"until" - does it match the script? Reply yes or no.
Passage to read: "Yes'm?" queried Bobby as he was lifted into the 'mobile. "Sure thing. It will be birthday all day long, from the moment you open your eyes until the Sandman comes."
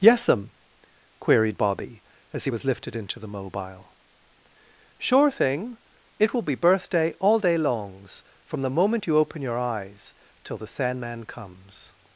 no